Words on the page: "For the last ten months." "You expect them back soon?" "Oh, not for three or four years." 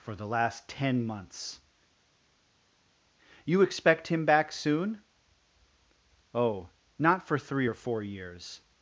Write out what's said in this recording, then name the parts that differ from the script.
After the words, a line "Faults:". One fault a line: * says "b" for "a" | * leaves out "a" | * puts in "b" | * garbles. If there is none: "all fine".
"For the last ten months." "You expect him back soon?" "Oh, not for three or four years."
Faults:
* says "him" for "them"